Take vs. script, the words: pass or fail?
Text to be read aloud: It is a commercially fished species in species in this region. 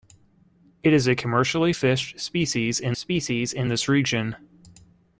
pass